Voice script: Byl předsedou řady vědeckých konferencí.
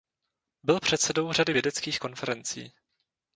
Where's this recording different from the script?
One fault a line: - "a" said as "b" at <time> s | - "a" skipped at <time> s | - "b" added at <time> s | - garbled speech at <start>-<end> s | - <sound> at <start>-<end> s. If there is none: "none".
none